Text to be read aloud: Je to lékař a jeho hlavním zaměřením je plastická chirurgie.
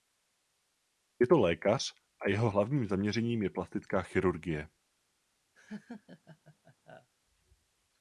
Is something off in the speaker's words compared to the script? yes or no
no